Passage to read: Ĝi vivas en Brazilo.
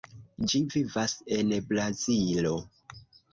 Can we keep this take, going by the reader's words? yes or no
yes